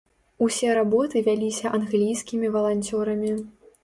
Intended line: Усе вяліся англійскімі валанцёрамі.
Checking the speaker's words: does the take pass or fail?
fail